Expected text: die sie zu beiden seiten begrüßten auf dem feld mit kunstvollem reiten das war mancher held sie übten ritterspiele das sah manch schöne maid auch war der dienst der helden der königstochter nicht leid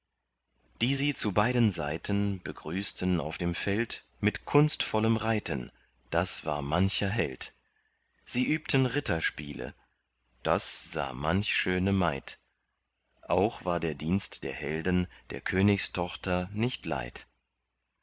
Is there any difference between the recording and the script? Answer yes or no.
no